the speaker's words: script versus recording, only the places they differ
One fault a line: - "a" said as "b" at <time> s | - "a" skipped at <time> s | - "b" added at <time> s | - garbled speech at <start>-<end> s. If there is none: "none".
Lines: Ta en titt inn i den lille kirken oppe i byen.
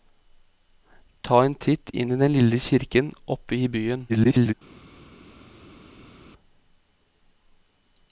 - garbled speech at 4.1-4.5 s